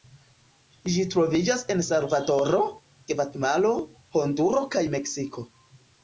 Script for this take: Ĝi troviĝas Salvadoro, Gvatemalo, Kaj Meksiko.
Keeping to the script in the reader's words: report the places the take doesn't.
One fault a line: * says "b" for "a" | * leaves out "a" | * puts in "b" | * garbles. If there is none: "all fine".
* puts in "en"
* puts in "Honduro"